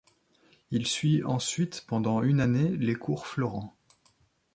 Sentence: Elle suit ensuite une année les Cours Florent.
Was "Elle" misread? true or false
true